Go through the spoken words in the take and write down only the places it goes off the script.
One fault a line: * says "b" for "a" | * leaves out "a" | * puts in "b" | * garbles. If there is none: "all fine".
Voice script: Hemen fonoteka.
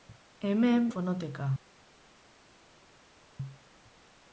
all fine